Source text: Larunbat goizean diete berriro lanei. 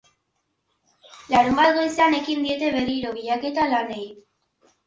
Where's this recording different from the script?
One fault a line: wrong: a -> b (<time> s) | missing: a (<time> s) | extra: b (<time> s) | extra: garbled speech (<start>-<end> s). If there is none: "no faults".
extra: ekin (2.2 s)
extra: bilaketa (3.2 s)